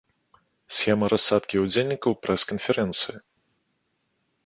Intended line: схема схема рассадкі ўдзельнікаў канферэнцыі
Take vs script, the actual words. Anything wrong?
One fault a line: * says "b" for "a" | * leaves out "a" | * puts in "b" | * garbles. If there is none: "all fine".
* leaves out "схема"
* puts in "прэс"